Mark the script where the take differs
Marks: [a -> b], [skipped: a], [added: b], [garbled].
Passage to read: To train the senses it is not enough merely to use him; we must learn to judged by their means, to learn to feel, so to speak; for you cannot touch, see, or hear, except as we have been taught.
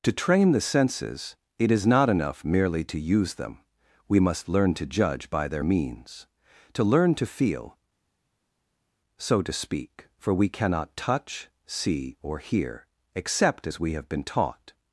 To train the senses it is not enough merely to use [him; -> them] we must learn to [judged -> judge] by their means, to learn to feel, so to speak; for [you -> we] cannot touch, see, or hear, except as we have been taught.